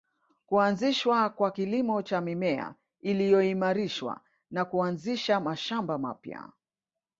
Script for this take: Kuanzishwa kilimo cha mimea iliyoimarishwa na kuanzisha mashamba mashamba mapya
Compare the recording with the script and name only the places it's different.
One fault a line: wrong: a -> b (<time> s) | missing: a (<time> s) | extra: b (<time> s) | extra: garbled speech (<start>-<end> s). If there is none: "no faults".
extra: kwa (1.3 s)
missing: mashamba (6.0 s)